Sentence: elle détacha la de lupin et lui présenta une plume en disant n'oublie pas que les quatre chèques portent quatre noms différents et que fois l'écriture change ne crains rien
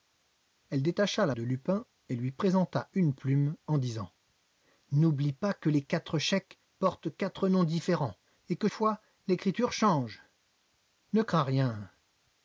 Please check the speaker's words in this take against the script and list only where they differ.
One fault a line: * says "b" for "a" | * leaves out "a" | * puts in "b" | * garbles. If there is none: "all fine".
all fine